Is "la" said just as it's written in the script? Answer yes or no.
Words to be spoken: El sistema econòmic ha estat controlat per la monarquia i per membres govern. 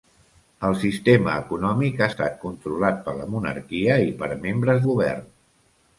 yes